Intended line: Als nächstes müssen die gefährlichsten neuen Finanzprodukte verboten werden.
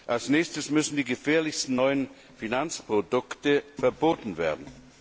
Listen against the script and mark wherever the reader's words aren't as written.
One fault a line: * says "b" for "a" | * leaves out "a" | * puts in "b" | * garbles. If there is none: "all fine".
all fine